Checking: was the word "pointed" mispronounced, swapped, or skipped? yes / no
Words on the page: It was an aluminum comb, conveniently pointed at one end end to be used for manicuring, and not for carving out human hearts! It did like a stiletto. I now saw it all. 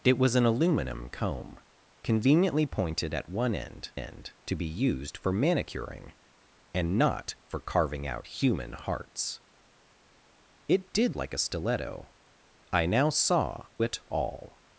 no